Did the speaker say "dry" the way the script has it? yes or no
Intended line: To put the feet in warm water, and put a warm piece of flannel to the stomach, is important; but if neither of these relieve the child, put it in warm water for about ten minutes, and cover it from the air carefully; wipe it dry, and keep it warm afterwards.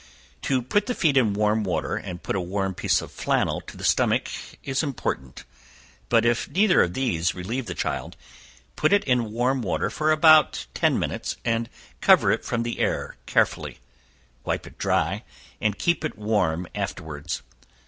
yes